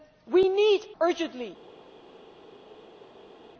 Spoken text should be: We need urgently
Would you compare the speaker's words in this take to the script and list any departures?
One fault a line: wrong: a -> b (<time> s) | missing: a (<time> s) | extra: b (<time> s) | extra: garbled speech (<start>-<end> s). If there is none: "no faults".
no faults